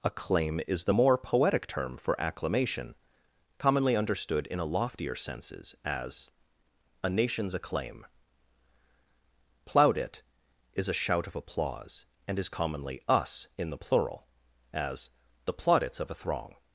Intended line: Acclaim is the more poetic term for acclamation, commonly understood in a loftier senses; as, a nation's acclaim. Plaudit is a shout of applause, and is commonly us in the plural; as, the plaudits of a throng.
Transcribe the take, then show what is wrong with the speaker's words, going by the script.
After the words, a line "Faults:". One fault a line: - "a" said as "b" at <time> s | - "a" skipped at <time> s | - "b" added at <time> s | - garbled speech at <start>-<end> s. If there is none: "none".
Acclaim is the more poetic term for acclamation, commonly understood in a loftier senses; as, a nation's acclaim. Plaudit is a shout of applause, and is commonly us in the plural; as, the plaudits of a throng.
Faults:
none